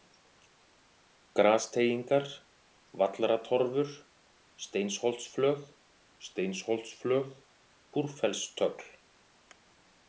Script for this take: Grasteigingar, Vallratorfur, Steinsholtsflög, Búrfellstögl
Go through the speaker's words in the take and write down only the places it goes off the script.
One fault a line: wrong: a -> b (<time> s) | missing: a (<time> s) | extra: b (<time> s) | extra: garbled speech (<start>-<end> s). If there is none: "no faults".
extra: Steinsholtsflög (6.2 s)